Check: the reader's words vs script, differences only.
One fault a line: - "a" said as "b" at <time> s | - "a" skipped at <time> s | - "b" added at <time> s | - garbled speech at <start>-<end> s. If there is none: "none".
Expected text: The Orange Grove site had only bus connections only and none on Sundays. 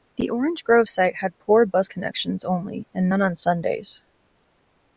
- "only" said as "poor" at 1.4 s